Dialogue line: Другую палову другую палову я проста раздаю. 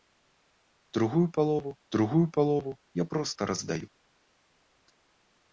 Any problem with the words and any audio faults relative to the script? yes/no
no